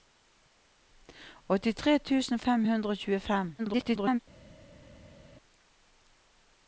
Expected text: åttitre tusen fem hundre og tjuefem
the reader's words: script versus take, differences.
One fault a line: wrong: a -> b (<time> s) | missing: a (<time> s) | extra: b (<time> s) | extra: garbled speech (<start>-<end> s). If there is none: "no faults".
extra: garbled speech (3.6-4.2 s)